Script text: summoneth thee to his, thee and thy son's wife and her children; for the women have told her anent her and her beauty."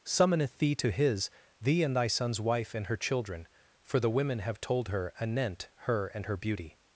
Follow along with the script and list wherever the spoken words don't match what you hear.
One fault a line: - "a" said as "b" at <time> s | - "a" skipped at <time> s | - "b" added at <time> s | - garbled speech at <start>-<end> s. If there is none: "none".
none